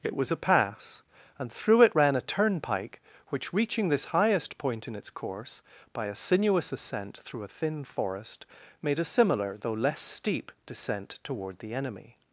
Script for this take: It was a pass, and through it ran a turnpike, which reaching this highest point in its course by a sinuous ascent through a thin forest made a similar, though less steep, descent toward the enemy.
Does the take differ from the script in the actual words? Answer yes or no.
no